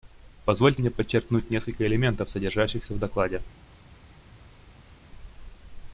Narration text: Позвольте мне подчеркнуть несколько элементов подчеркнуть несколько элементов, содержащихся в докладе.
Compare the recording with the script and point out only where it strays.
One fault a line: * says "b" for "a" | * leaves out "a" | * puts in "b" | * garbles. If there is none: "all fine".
* leaves out "подчеркнуть несколько элементов"